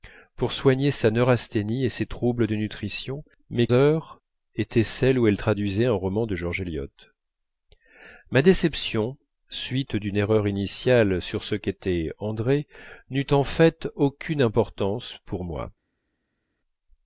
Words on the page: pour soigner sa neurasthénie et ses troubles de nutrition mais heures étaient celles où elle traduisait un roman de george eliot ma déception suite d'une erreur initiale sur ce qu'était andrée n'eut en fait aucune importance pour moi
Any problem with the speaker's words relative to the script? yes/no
no